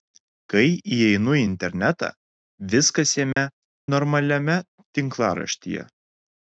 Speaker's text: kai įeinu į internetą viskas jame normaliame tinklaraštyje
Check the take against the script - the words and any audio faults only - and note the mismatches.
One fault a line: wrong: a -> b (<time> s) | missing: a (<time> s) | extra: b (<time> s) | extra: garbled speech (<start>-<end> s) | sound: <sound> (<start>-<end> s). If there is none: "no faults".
sound: dropout (3.3-3.4 s)